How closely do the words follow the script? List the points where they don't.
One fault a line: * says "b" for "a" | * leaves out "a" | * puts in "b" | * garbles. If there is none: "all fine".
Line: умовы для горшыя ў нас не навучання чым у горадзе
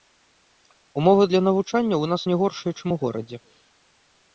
* says "навучання" for "горшыя"
* says "горшыя" for "навучання"